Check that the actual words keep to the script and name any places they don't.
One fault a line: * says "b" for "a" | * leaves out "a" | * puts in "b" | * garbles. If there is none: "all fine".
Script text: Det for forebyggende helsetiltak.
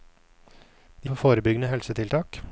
all fine